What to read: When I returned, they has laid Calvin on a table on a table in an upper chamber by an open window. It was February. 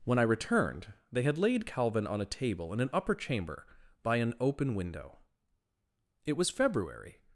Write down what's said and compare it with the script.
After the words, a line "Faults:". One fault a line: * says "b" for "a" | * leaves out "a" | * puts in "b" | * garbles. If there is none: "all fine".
When I returned, they had laid Calvin on a table in an upper chamber by an open window. It was February.
Faults:
* says "had" for "has"
* leaves out "on a table"